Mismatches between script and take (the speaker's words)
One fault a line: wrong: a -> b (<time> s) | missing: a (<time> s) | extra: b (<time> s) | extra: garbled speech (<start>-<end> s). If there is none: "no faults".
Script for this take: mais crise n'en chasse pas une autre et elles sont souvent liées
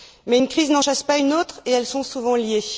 extra: une (0.3 s)